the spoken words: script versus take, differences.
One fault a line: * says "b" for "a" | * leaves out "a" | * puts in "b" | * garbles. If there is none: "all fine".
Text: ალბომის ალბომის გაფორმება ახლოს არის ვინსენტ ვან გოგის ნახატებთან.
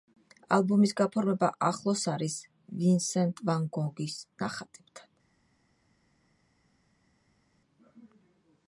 * leaves out "ალბომის"